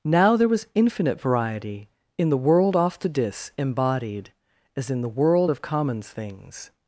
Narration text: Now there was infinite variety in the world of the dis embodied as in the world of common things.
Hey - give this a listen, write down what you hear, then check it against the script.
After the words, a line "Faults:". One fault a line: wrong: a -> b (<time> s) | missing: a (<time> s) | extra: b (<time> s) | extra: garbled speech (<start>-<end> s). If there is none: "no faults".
Now there was infinite variety in the world off the dis embodied as in the world of commons things.
Faults:
wrong: of -> off (2.8 s)
wrong: common -> commons (5.6 s)